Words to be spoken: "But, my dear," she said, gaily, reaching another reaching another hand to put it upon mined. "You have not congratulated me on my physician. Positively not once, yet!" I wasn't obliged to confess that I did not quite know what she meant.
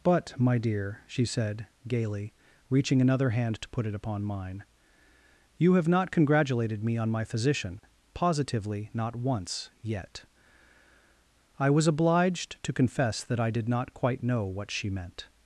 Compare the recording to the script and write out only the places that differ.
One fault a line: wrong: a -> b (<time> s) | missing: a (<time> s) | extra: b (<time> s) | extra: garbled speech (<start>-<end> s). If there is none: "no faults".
missing: reaching another (3.3 s)
wrong: mined -> mine (4.2 s)
wrong: wasn't -> was (11.7 s)